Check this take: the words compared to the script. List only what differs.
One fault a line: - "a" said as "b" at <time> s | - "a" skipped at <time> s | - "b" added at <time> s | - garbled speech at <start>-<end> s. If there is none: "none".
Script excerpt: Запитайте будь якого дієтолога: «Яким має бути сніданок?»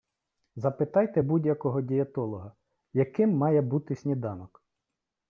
none